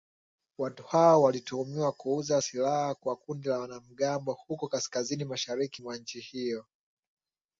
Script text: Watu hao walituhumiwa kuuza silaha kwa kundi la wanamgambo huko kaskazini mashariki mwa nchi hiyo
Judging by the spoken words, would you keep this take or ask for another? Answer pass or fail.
pass